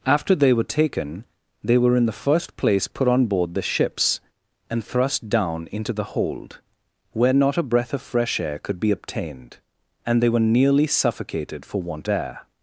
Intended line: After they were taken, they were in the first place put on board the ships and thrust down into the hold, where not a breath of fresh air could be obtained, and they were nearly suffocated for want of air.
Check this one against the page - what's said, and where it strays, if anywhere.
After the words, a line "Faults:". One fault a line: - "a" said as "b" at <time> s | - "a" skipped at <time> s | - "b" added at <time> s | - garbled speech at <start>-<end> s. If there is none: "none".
After they were taken, they were in the first place put on board the ships and thrust down into the hold, where not a breath of fresh air could be obtained, and they were nearly suffocated for want air.
Faults:
- "of" skipped at 12.1 s